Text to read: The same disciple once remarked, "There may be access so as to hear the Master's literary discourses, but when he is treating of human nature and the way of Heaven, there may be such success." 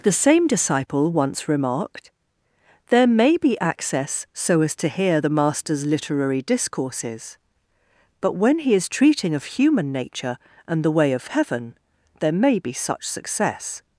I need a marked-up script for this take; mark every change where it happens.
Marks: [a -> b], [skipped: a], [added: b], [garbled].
The same disciple once remarked, "There may be access so as to hear the Master's literary discourses, but when he is treating of human nature and the way of Heaven, there may be such success."